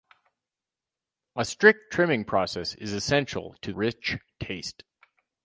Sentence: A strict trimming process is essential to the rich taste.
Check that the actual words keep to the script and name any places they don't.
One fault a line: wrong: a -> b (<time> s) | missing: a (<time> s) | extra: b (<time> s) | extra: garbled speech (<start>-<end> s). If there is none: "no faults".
missing: the (3.7 s)